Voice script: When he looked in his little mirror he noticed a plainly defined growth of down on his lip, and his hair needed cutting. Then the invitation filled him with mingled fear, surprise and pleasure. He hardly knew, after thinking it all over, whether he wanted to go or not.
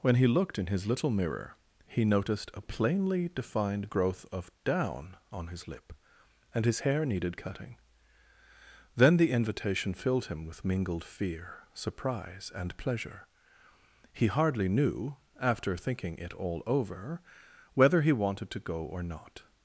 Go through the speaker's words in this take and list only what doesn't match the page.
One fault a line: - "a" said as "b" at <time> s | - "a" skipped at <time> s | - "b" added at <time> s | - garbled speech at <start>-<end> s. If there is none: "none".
none